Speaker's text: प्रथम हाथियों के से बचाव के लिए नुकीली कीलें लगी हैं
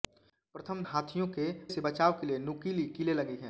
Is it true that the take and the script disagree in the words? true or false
false